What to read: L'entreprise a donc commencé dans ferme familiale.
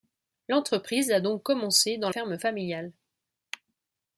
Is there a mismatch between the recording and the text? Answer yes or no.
no